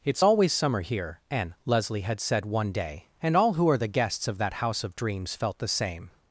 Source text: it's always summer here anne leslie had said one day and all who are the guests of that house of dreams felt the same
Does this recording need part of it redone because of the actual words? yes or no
no